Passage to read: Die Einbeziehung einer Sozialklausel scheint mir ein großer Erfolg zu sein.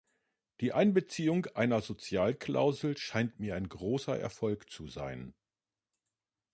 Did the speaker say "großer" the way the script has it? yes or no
yes